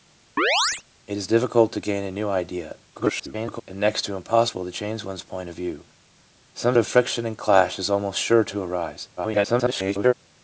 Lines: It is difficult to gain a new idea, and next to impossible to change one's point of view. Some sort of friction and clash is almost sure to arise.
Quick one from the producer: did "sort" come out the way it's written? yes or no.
no